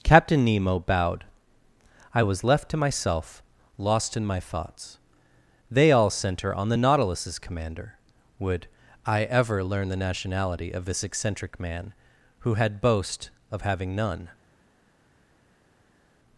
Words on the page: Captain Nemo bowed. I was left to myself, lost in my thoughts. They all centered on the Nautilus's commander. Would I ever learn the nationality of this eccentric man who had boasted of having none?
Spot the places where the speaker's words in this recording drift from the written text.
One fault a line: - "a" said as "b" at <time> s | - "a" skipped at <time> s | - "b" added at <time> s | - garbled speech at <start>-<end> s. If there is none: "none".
- "centered" said as "center" at 6.1 s
- "boasted" said as "boast" at 12.8 s